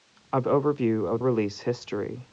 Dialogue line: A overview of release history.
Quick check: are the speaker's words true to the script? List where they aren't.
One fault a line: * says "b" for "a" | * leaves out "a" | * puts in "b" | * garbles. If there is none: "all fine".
all fine